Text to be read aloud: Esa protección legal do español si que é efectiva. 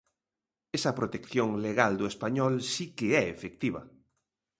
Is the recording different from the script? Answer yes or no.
no